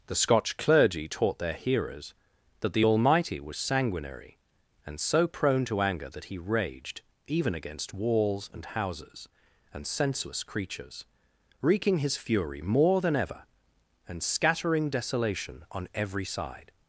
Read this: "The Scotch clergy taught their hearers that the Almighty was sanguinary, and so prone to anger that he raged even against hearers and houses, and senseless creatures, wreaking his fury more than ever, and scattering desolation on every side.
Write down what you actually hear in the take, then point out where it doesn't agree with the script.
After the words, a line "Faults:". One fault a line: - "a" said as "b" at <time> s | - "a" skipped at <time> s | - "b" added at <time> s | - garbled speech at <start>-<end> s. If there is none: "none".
"The Scotch clergy taught their hearers that the Almighty was sanguinary, and so prone to anger that he raged even against walls and houses, and senseless creatures, wreaking his fury more than ever, and scattering desolation on every side.
Faults:
- "hearers" said as "walls" at 7.9 s